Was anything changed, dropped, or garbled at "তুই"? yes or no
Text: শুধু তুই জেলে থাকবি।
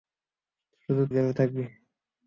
yes